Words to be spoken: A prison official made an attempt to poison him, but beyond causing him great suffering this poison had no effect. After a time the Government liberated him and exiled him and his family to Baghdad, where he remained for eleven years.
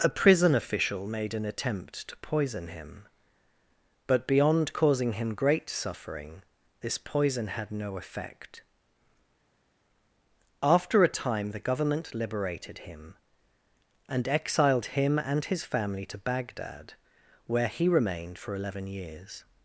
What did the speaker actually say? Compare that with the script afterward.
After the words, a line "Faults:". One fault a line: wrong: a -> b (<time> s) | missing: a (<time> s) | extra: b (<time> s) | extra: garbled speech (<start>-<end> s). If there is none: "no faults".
A prison official made an attempt to poison him, but beyond causing him great suffering this poison had no effect. After a time the Government liberated him and exiled him and his family to Baghdad, where he remained for eleven years.
Faults:
no faults